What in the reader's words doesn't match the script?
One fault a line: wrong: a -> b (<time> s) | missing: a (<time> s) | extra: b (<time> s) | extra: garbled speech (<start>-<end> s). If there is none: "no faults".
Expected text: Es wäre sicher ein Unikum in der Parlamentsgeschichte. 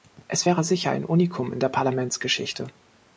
no faults